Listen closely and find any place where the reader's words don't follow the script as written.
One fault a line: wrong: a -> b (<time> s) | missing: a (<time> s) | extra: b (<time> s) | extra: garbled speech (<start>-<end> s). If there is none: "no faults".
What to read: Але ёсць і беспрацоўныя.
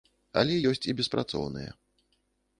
no faults